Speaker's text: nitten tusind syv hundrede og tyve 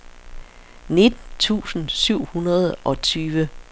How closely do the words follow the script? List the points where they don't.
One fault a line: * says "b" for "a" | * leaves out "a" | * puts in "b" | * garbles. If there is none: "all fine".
all fine